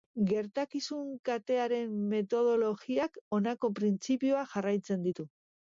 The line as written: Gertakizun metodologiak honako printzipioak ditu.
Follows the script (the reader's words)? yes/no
no